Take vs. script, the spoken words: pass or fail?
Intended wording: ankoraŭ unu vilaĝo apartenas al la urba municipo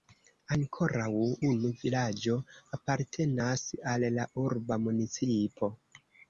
pass